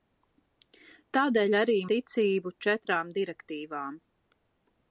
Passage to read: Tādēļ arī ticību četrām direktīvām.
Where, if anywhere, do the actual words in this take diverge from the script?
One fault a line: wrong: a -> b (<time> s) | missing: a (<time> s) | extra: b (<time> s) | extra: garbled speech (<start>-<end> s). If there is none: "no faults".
no faults